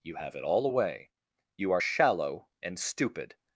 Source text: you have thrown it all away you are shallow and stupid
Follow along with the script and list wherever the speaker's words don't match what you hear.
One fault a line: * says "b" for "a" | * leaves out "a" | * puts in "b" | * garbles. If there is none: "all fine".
* leaves out "thrown"